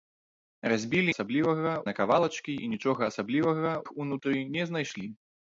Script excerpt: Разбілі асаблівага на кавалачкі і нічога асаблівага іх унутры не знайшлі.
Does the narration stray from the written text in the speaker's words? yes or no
no